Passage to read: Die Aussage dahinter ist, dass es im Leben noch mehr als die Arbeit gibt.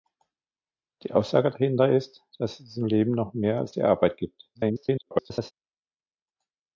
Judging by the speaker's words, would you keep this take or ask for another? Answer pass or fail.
fail